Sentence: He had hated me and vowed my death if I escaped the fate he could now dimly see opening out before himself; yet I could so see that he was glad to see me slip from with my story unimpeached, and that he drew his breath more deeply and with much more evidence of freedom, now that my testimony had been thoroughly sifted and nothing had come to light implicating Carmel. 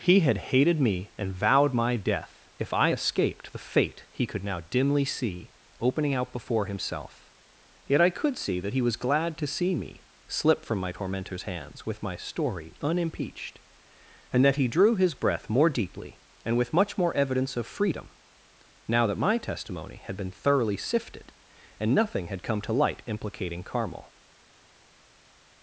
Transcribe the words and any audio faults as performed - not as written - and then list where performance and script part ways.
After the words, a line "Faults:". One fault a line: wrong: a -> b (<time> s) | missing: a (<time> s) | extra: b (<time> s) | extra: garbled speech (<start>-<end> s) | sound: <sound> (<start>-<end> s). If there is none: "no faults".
He had hated me and vowed my death if I escaped the fate he could now dimly see opening out before himself; yet I could see that he was glad to see me slip from my tormentor's hands with my story unimpeached, and that he drew his breath more deeply and with much more evidence of freedom, now that my testimony had been thoroughly sifted and nothing had come to light implicating Carmel.
Faults:
missing: so (8.4 s)
extra: my tormentor's hands (10.8 s)